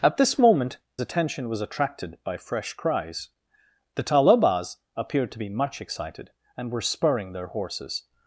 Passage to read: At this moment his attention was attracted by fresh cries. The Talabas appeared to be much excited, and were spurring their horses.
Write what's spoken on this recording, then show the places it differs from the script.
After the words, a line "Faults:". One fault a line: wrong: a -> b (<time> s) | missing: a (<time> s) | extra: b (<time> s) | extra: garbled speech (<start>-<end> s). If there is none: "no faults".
At this moment attention was attracted by fresh cries. The Talabas appeared to be much excited, and were spurring their horses.
Faults:
missing: his (0.8 s)